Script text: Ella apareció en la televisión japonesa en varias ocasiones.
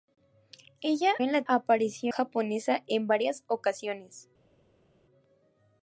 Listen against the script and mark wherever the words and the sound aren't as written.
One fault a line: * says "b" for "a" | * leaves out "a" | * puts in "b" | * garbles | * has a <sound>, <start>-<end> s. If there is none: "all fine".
* leaves out "apareció"
* says "apareció" for "televisión"